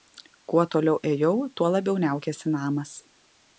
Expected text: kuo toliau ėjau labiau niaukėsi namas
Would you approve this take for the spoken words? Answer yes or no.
no